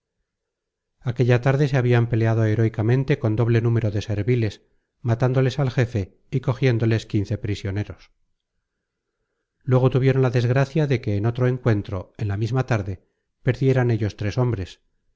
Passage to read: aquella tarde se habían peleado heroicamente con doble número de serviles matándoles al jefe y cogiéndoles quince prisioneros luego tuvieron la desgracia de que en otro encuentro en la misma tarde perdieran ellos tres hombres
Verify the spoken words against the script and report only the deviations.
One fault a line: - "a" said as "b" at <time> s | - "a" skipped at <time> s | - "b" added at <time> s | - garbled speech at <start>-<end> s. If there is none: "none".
none